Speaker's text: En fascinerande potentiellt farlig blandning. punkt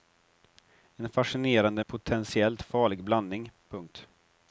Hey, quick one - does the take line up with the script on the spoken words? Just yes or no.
yes